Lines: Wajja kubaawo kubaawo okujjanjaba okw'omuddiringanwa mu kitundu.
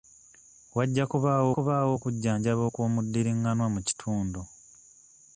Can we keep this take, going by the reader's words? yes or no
yes